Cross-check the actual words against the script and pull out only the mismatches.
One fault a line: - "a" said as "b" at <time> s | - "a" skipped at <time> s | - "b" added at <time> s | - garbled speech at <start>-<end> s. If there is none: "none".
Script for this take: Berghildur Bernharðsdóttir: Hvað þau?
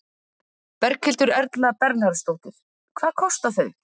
- "Erla" added at 1.4 s
- "kosta" added at 3.2 s